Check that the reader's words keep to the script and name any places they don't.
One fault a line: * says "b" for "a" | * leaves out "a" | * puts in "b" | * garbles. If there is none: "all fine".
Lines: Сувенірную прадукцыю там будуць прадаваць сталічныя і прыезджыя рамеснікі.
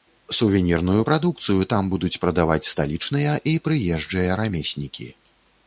all fine